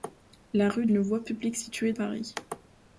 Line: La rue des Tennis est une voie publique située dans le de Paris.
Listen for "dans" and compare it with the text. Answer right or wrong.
wrong